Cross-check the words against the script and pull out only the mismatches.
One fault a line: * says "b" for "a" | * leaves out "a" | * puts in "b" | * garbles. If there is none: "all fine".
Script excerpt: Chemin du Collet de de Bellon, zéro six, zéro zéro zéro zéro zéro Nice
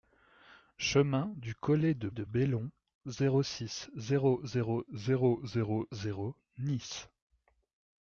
all fine